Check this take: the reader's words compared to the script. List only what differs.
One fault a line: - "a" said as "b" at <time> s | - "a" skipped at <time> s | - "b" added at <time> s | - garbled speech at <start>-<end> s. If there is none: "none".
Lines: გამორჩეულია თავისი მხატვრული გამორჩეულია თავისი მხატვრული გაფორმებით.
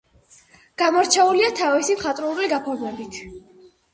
- "გამორჩეულია თავისი მხატვრული" skipped at 2.5 s